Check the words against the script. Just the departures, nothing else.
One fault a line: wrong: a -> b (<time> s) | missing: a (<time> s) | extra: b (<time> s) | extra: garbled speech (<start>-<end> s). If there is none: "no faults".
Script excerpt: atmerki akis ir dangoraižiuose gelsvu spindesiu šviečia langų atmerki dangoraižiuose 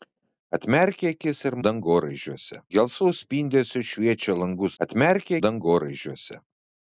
no faults